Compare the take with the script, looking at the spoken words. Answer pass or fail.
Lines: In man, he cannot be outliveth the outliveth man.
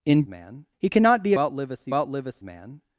pass